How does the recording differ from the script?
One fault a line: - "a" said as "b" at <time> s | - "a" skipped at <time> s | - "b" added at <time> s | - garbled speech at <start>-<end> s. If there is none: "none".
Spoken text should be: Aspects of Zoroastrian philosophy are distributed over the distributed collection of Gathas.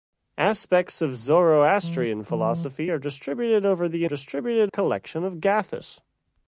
none